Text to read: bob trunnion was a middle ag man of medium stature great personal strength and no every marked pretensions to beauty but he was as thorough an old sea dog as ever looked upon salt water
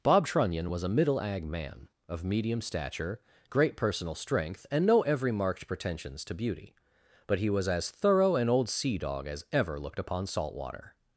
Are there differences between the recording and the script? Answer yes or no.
no